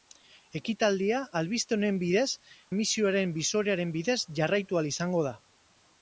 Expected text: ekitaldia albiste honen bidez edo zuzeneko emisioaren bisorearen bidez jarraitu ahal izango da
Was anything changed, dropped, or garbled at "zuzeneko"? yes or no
yes